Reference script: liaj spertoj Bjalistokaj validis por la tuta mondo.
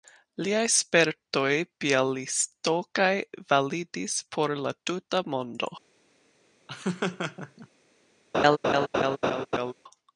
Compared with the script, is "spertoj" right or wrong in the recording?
right